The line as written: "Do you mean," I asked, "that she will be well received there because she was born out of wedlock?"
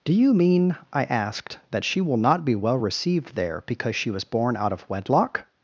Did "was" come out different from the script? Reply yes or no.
no